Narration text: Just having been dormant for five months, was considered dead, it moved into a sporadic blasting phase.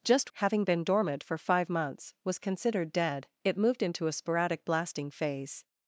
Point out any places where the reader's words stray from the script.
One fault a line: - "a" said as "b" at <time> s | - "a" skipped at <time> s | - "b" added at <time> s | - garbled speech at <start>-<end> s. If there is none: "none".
none